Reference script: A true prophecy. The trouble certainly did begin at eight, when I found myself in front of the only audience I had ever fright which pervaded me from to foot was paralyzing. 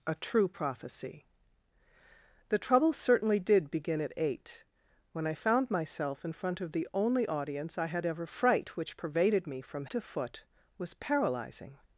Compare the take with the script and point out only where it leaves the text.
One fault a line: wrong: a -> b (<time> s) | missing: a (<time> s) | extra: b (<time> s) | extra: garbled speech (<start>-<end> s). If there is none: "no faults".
no faults